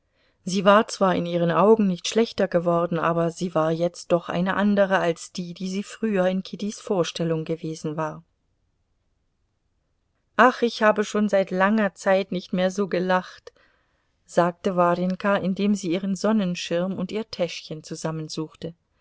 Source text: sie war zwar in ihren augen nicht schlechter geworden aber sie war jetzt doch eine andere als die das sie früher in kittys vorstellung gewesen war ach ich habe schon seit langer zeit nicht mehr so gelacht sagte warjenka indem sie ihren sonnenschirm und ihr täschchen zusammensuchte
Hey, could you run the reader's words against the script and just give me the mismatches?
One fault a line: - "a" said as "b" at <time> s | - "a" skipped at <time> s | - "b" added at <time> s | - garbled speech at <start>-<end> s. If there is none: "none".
- "das" said as "die" at 5.5 s